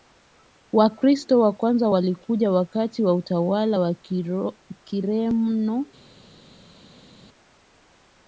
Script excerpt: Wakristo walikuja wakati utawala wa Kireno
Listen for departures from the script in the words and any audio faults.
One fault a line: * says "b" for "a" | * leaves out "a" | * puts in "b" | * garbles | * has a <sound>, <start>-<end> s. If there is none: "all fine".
* puts in "wa kwanza"
* puts in "wa"